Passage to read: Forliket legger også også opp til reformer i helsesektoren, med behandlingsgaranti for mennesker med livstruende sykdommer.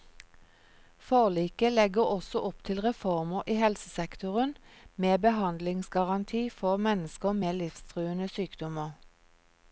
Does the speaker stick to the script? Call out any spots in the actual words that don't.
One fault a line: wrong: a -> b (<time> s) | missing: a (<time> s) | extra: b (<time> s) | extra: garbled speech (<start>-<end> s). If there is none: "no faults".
missing: også (2.4 s)